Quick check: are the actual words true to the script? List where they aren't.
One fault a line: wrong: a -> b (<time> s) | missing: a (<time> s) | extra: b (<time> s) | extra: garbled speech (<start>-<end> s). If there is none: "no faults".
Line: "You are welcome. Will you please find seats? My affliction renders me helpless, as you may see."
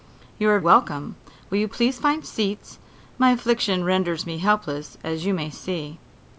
no faults